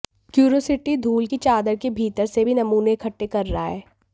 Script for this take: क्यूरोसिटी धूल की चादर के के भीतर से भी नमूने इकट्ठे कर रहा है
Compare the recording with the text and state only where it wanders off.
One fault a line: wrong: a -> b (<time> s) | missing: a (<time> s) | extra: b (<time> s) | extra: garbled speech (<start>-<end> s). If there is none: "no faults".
missing: के (1.9 s)